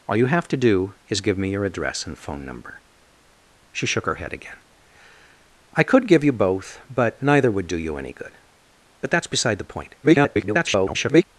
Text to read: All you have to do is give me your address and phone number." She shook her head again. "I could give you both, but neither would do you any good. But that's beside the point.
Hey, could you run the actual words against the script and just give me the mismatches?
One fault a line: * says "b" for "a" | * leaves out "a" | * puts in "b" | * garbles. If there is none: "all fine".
* garbles